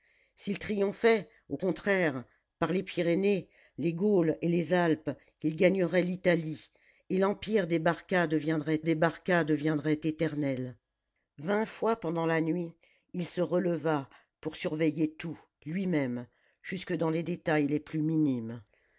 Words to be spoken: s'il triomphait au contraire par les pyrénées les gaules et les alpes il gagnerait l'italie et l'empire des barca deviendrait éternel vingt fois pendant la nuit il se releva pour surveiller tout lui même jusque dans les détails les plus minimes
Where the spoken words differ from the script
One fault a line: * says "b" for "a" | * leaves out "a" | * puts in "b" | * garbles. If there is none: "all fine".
* puts in "des barca deviendrait"